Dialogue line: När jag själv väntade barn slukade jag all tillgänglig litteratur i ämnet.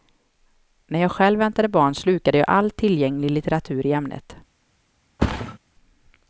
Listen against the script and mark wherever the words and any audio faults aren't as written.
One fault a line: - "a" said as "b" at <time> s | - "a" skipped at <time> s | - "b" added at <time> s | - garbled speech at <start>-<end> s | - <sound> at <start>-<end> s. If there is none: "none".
- thud at 5.2-5.6 s